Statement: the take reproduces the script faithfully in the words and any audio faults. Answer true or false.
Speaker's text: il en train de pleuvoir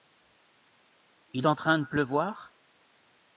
true